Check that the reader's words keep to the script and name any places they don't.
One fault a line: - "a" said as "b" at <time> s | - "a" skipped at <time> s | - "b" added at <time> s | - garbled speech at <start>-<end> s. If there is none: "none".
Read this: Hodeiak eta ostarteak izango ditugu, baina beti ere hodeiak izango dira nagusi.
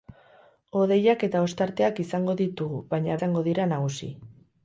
- "beti ere hodeiak" skipped at 3.2 s